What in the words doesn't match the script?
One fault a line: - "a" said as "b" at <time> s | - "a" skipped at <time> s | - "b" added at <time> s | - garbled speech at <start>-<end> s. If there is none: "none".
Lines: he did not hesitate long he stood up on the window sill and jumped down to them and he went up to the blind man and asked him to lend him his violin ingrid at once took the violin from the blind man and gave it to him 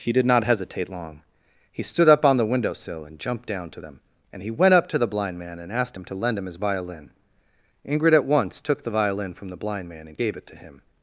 none